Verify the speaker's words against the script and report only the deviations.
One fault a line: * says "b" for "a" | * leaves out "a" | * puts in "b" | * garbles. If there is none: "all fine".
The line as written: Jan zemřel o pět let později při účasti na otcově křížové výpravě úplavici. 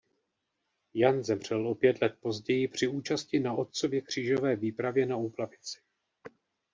* puts in "na"